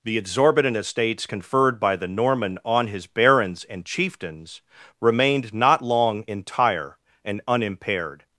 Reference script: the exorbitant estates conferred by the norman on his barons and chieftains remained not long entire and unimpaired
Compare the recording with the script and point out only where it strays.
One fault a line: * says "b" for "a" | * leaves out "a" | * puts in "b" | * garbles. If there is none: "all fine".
all fine